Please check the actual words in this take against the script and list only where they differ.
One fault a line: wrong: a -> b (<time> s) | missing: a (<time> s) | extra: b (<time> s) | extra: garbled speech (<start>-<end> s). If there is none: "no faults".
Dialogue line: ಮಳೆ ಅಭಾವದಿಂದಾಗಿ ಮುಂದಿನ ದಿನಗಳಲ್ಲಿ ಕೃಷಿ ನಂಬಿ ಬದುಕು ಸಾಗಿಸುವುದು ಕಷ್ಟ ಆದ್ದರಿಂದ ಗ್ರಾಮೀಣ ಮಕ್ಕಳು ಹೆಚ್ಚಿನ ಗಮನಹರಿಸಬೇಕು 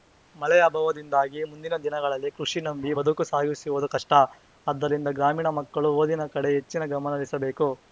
extra: ಓದಿನ ಕಡೆ (6.0 s)